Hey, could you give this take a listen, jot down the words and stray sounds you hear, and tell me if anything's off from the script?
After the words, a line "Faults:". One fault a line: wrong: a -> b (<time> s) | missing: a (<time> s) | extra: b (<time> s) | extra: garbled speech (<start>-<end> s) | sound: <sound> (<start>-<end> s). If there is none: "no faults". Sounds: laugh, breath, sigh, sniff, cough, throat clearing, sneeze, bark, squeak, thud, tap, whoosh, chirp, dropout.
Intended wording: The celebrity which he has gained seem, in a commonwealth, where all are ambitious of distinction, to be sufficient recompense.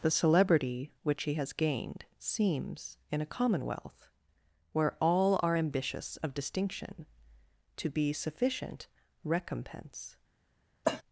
The celebrity which he has gained seems, in a commonwealth, where all are ambitious of distinction, to be sufficient recompense.
Faults:
wrong: seem -> seems (2.2 s)
sound: cough (10.8-11.0 s)